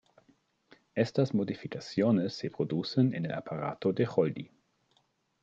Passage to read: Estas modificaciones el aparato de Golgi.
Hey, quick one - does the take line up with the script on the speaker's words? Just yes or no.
no